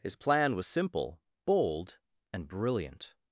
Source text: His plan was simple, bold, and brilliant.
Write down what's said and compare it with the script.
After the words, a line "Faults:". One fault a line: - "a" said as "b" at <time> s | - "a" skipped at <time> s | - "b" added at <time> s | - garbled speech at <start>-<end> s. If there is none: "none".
His plan was simple, bold, and brilliant.
Faults:
none